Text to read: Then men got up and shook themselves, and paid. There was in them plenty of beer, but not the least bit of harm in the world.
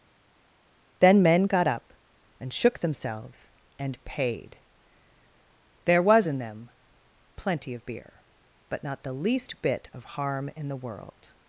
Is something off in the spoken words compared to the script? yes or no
no